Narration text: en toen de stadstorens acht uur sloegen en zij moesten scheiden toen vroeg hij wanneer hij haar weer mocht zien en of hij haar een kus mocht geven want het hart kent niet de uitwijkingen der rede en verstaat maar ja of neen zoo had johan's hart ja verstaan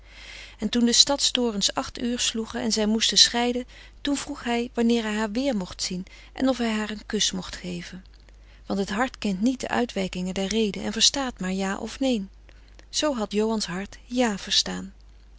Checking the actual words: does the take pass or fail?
pass